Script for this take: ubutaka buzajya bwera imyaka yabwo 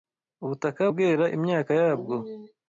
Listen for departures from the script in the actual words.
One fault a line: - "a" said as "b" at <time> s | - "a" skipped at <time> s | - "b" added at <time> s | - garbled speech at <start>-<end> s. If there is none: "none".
- "buzajya" skipped at 0.8 s